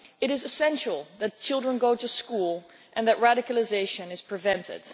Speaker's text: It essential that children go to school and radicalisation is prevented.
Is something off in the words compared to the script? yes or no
yes